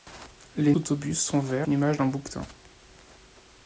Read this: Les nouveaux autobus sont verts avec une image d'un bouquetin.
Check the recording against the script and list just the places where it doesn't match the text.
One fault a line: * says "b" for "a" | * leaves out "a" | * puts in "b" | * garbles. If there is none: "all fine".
* leaves out "nouveaux"
* leaves out "avec"